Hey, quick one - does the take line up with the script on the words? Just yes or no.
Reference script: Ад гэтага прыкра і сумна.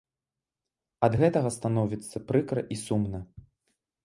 no